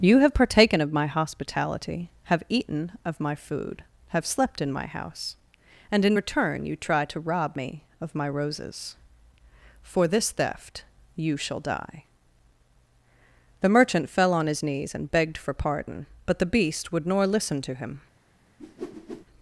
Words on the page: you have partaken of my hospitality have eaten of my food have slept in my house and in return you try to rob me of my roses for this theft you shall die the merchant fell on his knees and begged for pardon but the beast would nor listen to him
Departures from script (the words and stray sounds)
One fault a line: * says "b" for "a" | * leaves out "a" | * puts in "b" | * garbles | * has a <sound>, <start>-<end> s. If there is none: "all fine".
* has a whoosh, 18.6-19.3 s